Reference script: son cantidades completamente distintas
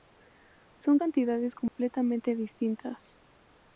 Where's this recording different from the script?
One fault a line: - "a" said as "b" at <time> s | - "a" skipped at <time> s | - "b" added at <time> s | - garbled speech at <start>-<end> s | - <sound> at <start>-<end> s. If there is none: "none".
- dropout at 1.7-1.8 s